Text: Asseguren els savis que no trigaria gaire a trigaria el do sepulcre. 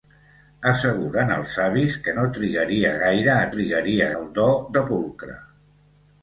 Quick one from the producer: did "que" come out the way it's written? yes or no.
yes